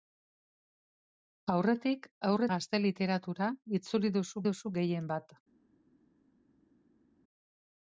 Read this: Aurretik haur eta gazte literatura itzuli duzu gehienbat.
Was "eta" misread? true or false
true